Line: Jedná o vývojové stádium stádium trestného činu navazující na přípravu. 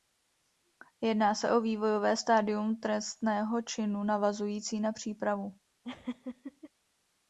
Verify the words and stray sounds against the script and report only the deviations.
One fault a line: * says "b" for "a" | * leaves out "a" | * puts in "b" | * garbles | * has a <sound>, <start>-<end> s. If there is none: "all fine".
* puts in "se"
* leaves out "stádium"
* has a laugh, 5.8-6.7 s